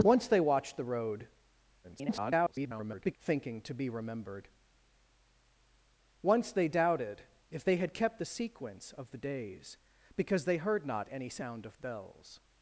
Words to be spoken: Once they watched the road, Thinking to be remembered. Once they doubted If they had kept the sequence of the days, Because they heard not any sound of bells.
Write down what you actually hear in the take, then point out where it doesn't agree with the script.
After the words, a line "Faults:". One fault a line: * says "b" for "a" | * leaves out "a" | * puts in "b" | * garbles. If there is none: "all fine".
Once they watched the road, [garbled] Thinking to be remembered. Once they doubted If they had kept the sequence of the days, Because they heard not any sound of bells.
Faults:
* garbles